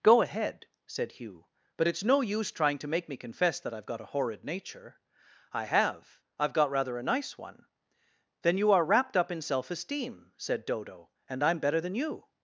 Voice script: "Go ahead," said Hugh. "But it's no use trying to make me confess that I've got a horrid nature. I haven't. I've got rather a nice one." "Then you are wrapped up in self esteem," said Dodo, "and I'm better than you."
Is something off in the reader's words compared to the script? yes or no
yes